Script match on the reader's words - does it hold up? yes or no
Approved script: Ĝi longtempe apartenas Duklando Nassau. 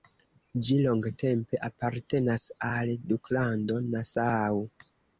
no